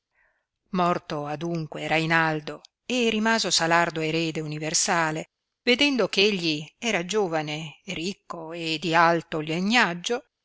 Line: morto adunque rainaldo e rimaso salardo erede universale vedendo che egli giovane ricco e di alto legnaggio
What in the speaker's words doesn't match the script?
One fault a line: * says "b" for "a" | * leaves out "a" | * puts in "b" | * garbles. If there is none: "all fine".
* puts in "era"